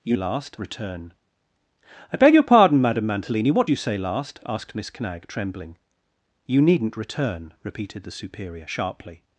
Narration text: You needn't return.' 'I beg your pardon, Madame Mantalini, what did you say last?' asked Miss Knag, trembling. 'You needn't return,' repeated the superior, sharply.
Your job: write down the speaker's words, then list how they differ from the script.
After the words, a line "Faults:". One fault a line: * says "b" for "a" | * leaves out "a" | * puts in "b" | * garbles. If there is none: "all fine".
You last return.' 'I beg your pardon, Madame Mantalini, what you say last?' asked Miss Knag, trembling. 'You needn't return,' repeated the superior, sharply.
Faults:
* says "last" for "needn't"
* leaves out "did"